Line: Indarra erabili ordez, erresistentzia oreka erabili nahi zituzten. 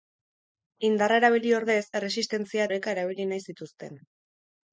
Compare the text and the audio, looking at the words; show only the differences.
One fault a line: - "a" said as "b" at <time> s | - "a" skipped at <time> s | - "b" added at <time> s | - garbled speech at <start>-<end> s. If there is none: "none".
none